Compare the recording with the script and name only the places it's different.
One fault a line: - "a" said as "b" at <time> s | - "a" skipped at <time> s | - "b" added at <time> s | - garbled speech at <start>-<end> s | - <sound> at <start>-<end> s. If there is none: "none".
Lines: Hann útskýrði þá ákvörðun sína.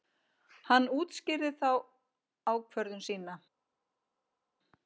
none